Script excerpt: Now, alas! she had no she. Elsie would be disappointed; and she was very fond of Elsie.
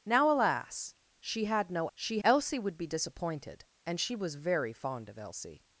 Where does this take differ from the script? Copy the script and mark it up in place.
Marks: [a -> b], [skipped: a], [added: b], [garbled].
Now, alas! she had no she. Elsie would be disappointed; and she was very fond of Elsie.